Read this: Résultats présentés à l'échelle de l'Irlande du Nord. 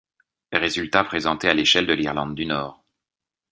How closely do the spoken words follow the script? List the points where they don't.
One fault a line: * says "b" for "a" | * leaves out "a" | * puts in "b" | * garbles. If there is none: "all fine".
all fine